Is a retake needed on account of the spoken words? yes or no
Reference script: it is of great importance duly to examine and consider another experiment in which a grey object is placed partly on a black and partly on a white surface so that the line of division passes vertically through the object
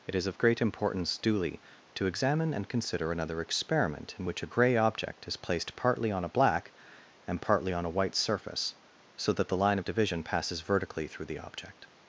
no